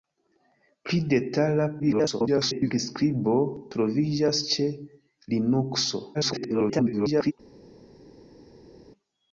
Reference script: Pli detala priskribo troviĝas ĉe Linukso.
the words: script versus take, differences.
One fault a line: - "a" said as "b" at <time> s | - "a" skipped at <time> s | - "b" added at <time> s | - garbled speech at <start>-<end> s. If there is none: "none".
- garbled speech at 1.8-2.7 s
- garbled speech at 6.1-7.3 s